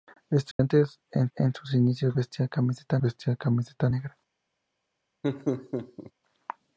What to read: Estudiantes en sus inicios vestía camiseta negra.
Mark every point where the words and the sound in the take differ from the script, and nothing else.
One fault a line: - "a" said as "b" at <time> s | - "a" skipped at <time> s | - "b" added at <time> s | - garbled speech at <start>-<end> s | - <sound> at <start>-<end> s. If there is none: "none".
- dropout at 0.5-0.6 s
- "en" added at 1.4 s
- "vestía camiseta" added at 3.0 s
- laugh at 5.2-6.1 s